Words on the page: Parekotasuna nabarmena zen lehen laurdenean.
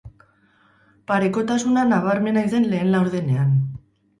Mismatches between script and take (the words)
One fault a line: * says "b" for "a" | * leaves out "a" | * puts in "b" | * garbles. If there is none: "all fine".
all fine